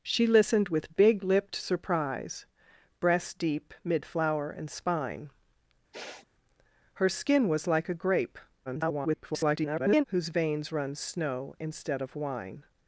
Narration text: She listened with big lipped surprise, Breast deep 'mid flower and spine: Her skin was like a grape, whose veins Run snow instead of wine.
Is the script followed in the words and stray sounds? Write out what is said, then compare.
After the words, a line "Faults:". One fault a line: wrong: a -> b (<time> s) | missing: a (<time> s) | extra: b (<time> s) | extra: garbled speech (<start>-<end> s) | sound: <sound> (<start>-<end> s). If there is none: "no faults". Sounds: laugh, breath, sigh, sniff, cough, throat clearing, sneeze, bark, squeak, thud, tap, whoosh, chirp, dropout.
She listened with big lipped surprise, Breast deep 'mid flower and spine: Her skin was like a grape, [garbled] whose veins Run snow instead of wine.
Faults:
sound: sniff (5.9-6.3 s)
extra: garbled speech (8.7-10.0 s)